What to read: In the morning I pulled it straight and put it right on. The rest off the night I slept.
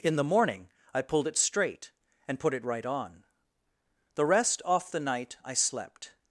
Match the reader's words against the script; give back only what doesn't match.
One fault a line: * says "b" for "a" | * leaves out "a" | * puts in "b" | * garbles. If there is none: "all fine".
all fine